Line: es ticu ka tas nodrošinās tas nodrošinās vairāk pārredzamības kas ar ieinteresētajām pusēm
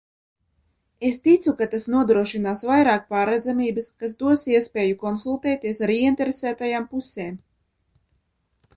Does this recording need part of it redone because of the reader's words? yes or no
yes